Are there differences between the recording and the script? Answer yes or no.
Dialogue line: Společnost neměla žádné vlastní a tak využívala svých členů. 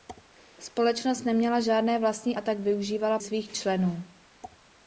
no